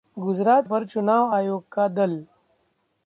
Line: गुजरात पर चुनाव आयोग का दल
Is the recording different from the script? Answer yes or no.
no